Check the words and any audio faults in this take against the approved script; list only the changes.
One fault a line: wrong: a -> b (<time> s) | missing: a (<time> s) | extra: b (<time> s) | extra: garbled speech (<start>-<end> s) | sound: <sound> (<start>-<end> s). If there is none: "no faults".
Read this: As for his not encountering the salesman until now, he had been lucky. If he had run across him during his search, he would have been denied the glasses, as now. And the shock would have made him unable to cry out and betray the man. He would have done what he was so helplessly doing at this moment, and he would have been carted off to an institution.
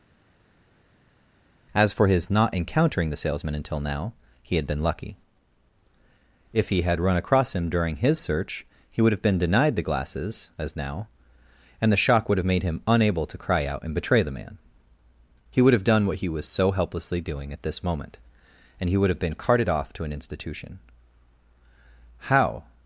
extra: How (22.2 s)